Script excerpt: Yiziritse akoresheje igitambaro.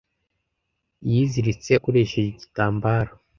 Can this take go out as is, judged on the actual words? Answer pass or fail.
pass